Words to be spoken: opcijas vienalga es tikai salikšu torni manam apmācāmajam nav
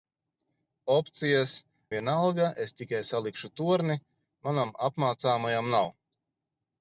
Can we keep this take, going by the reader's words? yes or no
yes